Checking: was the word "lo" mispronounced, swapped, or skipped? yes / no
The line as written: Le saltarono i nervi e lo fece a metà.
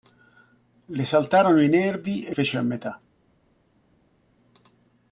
yes